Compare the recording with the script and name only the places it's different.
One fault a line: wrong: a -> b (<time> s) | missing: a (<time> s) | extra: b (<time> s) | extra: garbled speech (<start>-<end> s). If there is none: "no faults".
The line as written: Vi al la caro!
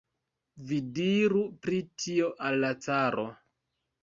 extra: diru pri tio (1.0 s)